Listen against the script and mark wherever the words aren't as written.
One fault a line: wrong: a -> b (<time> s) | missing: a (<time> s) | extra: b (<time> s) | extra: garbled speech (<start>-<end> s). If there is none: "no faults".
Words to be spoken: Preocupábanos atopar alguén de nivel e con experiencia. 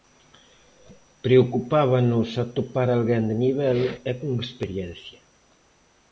no faults